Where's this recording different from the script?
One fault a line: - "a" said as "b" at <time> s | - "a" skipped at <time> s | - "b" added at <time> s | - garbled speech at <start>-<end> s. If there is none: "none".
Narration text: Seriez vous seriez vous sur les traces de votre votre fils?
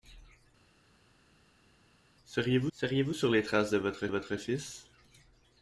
none